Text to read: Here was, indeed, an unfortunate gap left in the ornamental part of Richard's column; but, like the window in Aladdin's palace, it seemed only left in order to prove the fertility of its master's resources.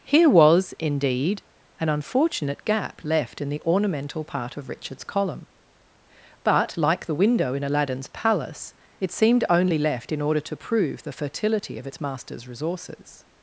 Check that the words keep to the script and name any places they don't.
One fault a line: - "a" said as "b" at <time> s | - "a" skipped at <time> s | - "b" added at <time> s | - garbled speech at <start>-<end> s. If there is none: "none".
none